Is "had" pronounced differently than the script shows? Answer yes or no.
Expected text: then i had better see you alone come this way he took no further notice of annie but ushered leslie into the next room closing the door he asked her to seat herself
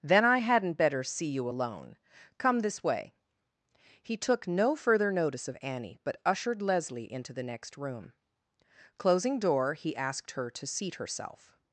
yes